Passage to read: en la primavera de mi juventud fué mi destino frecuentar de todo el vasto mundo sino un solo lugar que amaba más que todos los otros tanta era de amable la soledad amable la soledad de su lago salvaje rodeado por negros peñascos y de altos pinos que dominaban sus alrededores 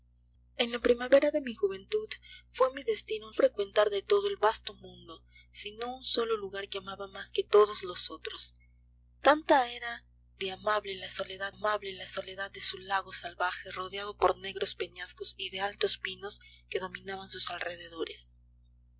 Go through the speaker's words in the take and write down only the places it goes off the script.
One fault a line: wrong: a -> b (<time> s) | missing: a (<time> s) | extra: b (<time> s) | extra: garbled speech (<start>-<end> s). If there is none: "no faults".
no faults